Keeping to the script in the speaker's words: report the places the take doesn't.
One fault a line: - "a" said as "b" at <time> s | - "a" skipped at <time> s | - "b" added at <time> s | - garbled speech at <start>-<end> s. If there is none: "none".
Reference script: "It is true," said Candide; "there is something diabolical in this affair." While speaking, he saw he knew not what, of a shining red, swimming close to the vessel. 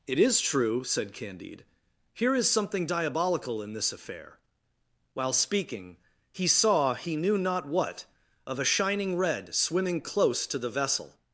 - "there" said as "here" at 2.1 s